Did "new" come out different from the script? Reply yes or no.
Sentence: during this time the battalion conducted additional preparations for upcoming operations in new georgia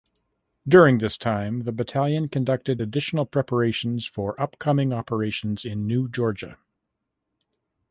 no